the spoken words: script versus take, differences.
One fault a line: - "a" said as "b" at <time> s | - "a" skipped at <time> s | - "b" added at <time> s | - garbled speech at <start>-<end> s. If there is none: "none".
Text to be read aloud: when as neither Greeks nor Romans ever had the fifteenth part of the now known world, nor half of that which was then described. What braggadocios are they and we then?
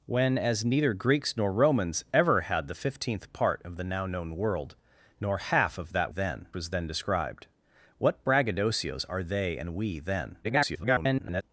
- "which" said as "then" at 6.1 s
- garbled speech at 10.4-11.4 s